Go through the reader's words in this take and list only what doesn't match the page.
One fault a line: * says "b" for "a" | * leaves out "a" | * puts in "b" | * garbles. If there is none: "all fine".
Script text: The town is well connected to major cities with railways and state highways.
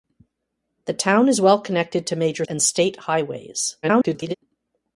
* leaves out "cities with railways"
* garbles